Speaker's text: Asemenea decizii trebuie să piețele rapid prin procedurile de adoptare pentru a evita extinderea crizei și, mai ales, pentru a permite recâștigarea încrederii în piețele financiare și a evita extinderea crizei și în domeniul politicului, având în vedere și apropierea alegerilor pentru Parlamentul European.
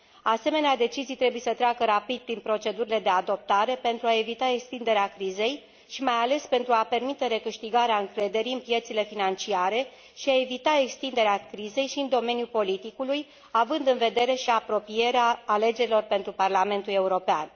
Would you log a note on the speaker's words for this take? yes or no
yes